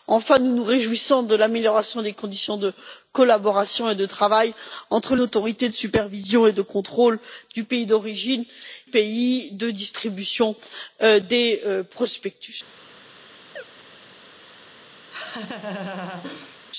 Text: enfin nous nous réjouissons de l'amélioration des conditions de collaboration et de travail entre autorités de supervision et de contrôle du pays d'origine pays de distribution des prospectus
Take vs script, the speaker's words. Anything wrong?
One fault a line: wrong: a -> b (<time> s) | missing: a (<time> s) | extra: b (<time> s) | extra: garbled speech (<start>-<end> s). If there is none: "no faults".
no faults